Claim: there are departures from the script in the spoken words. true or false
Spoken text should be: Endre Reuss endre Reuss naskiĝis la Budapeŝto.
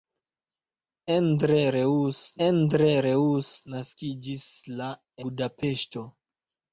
false